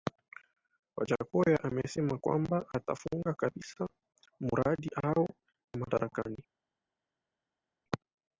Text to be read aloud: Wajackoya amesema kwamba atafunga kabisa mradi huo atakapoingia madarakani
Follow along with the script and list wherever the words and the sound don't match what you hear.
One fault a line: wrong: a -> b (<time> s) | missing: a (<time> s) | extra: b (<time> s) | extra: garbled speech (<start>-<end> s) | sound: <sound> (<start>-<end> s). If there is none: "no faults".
missing: atakapoingia (5.3 s)